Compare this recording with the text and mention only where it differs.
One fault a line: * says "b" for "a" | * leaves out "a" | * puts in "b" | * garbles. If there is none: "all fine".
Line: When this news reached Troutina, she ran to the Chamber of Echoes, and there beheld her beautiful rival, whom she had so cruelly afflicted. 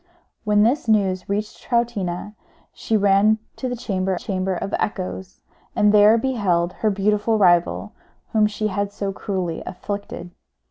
* puts in "Chamber"